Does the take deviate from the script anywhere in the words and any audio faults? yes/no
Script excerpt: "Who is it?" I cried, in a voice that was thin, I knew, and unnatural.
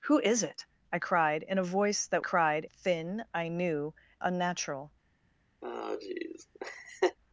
yes